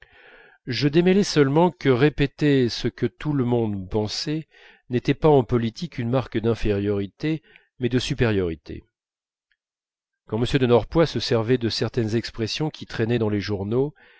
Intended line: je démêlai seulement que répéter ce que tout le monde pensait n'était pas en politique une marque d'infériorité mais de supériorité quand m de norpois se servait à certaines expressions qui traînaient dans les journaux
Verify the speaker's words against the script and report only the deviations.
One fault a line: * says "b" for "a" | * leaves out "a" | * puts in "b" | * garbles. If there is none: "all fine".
* says "de" for "à"